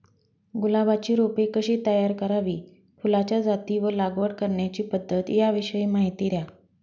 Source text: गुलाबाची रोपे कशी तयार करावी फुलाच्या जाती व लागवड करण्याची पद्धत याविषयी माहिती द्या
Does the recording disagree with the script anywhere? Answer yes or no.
no